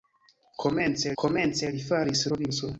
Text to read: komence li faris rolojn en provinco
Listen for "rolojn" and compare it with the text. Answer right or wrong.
wrong